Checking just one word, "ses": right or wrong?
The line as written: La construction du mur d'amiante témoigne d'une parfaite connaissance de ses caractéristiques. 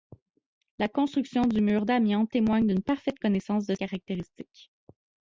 wrong